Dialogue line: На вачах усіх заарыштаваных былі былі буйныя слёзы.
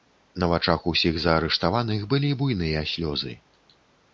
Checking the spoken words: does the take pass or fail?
fail